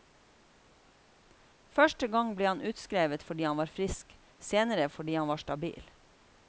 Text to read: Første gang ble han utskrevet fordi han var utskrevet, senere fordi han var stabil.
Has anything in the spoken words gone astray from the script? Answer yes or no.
yes